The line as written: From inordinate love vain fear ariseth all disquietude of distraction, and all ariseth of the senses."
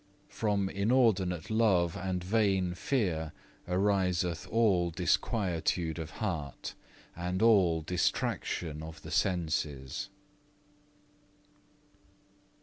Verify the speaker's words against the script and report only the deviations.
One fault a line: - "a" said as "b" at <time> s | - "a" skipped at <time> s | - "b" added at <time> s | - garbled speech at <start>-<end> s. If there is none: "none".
- "and" added at 1.9 s
- "distraction" said as "heart" at 6.2 s
- "ariseth" said as "distraction" at 7.8 s